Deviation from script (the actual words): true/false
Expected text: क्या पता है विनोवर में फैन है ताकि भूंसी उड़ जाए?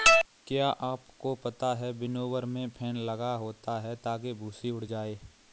true